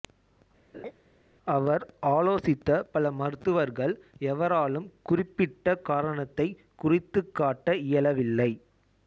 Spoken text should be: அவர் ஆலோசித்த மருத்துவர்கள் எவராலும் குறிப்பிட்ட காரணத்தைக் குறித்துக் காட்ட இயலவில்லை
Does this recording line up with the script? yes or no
no